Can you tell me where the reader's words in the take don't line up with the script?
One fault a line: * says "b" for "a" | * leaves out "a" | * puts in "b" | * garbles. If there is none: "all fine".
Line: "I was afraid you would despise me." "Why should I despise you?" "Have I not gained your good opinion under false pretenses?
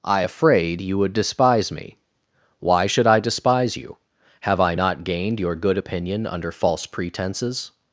* leaves out "was"